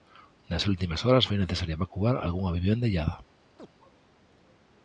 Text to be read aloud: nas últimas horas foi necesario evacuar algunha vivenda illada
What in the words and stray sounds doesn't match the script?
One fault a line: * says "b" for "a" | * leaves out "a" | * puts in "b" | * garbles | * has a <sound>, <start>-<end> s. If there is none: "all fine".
* has a chirp, 3.6-3.7 s